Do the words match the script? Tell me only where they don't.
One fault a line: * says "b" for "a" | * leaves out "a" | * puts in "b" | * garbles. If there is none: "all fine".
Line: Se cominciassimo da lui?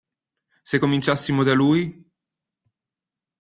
all fine